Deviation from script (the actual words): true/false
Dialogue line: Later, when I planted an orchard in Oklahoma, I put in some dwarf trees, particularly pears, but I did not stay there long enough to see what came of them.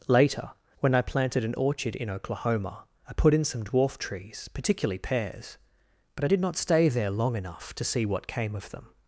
false